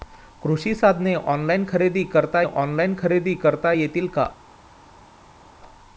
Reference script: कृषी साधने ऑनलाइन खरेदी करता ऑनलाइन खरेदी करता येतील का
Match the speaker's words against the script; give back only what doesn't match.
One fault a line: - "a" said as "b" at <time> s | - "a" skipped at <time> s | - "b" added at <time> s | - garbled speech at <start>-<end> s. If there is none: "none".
none